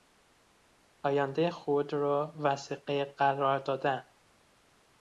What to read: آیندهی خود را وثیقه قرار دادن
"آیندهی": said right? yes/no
yes